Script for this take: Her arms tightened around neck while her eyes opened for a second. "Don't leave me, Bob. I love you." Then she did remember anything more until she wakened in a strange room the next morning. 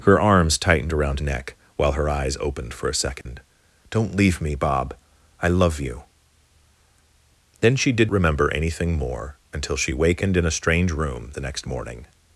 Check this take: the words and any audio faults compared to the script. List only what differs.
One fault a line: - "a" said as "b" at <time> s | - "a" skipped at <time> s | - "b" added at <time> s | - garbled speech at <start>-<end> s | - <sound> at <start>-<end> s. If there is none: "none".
- dropout at 3.2-3.3 s